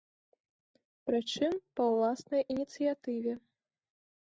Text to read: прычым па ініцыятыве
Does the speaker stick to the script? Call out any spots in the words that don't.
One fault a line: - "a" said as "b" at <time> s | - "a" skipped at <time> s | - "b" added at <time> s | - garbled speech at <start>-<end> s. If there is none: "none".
- "ўласнай" added at 1.9 s